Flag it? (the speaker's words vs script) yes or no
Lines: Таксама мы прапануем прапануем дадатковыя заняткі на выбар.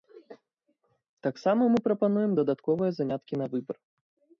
yes